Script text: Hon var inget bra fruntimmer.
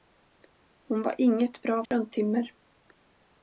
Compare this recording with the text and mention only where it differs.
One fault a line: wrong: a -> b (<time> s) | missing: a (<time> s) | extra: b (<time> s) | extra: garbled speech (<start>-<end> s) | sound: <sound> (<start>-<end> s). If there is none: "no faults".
sound: dropout (1.9-1.9 s)